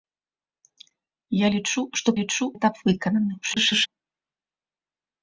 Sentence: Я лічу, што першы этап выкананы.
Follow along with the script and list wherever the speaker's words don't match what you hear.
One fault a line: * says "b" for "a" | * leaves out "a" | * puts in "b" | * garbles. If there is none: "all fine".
* says "лічу" for "першы"
* garbles